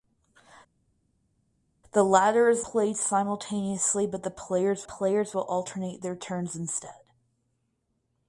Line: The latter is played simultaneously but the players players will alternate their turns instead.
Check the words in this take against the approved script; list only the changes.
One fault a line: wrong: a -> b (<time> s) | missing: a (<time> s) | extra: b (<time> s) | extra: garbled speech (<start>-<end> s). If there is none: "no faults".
no faults